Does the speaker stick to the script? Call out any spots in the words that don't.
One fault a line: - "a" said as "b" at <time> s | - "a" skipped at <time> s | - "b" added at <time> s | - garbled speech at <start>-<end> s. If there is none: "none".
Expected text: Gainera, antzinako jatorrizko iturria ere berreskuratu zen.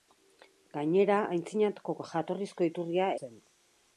- "ere berreskuratu" skipped at 3.1 s